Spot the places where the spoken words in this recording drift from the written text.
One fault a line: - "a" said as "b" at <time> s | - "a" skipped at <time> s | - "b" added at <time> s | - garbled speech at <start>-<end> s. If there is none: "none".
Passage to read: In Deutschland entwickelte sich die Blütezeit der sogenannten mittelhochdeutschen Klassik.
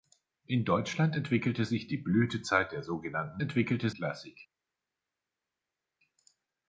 - "mittelhochdeutschen" said as "entwickelte" at 3.4 s